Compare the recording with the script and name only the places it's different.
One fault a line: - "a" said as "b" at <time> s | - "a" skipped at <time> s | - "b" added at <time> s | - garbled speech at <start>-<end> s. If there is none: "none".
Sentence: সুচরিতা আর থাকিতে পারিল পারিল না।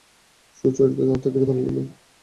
- "পারিল" skipped at 1.7 s